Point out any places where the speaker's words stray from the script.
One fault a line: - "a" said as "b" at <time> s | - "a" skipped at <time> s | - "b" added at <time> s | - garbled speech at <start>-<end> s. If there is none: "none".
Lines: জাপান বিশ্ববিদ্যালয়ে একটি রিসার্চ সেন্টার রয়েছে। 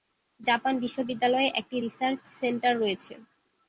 none